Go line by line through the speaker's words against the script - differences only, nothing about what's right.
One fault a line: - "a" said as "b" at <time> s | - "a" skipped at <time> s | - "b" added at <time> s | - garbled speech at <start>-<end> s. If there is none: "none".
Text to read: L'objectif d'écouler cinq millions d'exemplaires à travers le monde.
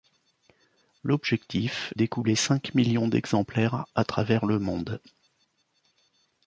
none